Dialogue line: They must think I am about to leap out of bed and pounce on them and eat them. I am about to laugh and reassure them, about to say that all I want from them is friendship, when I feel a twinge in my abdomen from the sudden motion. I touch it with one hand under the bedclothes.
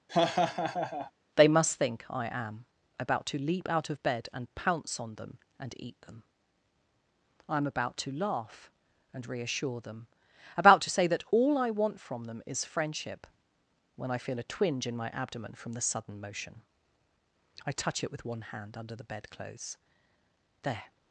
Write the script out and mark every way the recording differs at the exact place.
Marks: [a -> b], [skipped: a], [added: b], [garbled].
They must think I am about to leap out of bed and pounce on them and eat them. I am about to laugh and reassure them, about to say that all I want from them is friendship, when I feel a twinge in my abdomen from the sudden motion. I touch it with one hand under the bedclothes. [added: There]